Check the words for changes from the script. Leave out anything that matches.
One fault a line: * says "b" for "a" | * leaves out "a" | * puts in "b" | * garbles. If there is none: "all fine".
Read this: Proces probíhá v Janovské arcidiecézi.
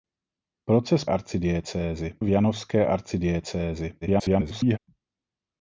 * says "arcidiecézi" for "probíhá"
* garbles